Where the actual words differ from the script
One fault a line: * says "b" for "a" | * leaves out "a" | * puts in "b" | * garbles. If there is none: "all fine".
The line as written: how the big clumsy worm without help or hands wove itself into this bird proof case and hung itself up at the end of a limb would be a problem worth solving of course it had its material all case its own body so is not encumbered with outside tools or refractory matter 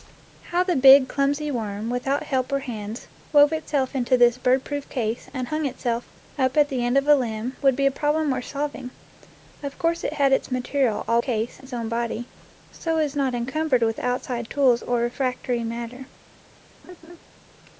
all fine